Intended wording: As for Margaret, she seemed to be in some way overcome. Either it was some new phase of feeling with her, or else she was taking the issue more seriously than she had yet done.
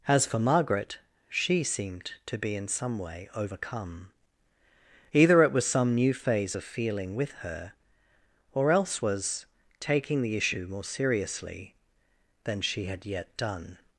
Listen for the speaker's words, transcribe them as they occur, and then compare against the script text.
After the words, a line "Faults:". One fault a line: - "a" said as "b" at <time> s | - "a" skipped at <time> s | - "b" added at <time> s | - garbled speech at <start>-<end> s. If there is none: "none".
As for Margaret, she seemed to be in some way overcome. Either it was some new phase of feeling with her, or else was taking the issue more seriously than she had yet done.
Faults:
- "she" skipped at 9.0 s